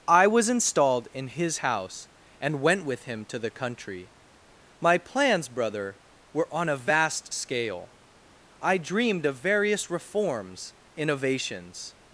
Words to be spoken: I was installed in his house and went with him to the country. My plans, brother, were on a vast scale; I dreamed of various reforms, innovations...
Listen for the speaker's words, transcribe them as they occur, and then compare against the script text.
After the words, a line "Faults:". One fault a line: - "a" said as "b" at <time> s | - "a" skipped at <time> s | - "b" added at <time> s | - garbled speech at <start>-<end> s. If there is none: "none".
I was installed in his house and went with him to the country. My plans, brother, were on a vast scale; I dreamed of various reforms, innovations...
Faults:
none